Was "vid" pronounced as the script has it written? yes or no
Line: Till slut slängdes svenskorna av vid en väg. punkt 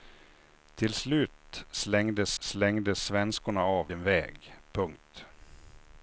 no